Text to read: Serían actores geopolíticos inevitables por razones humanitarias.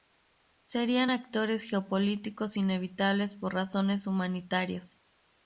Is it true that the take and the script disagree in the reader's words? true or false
false